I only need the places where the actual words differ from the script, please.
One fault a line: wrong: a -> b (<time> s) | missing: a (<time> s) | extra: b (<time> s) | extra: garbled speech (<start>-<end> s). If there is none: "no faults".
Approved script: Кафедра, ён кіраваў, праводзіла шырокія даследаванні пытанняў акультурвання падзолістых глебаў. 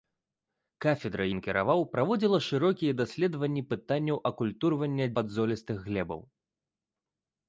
no faults